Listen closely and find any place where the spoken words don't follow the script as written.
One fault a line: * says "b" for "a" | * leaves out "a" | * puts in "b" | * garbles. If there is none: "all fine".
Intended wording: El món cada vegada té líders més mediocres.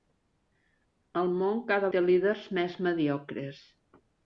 * leaves out "vegada"